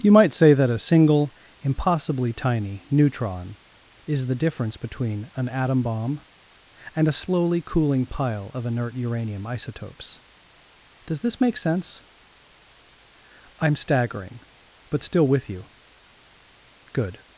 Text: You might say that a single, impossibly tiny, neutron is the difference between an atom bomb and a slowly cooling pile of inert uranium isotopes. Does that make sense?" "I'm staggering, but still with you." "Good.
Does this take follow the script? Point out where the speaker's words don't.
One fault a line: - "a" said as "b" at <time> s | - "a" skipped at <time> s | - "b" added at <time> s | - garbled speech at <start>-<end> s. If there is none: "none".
- "that" said as "this" at 11.2 s